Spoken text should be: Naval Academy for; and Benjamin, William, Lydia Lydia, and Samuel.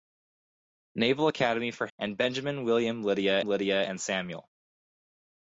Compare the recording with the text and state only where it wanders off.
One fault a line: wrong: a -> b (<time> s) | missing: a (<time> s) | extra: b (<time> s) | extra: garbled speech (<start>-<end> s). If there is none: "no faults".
no faults